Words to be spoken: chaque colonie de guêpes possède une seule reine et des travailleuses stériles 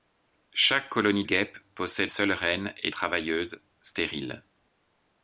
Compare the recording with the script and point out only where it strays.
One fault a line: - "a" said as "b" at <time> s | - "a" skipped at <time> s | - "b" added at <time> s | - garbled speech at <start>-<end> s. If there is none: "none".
- "de" skipped at 1.2 s
- "une" skipped at 2.1 s
- "des" skipped at 2.9 s